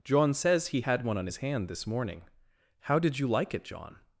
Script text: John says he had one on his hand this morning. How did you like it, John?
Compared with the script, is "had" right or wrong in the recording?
right